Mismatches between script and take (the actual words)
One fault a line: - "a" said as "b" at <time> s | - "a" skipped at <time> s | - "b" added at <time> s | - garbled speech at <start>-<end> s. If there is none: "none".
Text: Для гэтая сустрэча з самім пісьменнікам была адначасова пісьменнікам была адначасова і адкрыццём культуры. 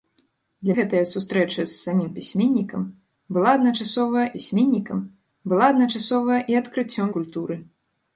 none